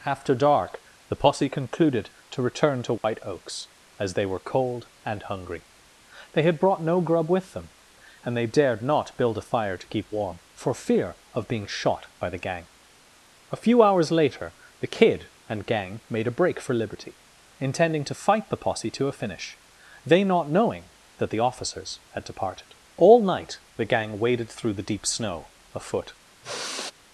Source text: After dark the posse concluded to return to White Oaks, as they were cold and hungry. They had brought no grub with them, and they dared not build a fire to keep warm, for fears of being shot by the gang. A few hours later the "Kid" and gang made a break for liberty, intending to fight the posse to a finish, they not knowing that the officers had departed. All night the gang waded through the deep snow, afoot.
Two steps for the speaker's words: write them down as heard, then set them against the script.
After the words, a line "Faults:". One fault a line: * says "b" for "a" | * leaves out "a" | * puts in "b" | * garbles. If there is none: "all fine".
After dark the posse concluded to return to White Oaks, as they were cold and hungry. They had brought no grub with them, and they dared not build a fire to keep warm, for fear of being shot by the gang. A few hours later the "Kid" and gang made a break for liberty, intending to fight the posse to a finish, they not knowing that the officers had departed. All night the gang waded through the deep snow, afoot.
Faults:
* says "fear" for "fears"